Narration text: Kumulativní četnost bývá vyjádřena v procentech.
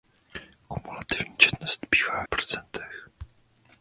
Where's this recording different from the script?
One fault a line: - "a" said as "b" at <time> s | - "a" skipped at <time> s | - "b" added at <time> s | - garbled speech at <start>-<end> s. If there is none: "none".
- "vyjádřena" skipped at 2.2 s